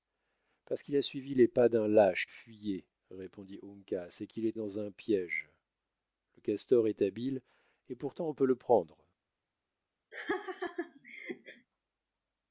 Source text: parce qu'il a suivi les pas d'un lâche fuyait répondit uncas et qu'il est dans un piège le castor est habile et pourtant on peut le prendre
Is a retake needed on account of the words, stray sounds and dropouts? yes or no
yes